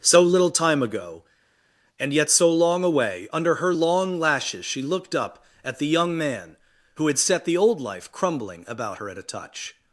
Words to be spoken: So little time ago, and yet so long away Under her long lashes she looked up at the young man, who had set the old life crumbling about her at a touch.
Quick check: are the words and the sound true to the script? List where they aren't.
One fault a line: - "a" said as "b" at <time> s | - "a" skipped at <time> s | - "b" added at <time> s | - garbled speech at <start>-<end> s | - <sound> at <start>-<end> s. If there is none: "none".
none